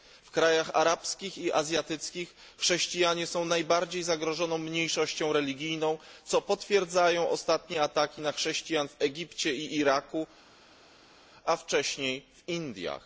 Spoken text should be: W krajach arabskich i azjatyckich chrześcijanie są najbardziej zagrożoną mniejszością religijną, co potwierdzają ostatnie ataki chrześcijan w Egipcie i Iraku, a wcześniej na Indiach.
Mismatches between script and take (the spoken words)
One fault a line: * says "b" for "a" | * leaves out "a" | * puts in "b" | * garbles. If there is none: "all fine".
* puts in "na"
* says "w" for "na"